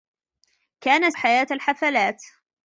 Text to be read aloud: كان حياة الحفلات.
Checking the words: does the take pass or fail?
pass